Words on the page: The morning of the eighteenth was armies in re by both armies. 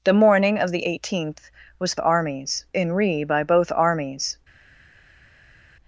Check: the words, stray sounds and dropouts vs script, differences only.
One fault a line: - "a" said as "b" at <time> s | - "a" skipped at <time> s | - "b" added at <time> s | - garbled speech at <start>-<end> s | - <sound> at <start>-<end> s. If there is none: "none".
none